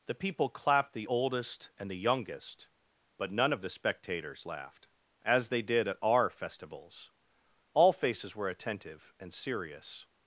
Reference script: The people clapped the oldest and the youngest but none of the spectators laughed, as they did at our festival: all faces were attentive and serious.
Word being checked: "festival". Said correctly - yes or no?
no